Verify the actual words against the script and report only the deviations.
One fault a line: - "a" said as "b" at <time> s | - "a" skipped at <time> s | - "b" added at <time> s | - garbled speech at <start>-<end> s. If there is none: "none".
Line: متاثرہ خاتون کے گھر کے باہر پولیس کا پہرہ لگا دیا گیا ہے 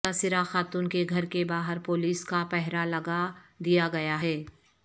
none